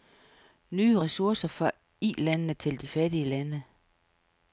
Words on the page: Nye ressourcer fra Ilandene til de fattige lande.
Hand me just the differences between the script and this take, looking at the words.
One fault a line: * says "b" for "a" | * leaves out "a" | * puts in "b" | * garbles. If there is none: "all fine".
all fine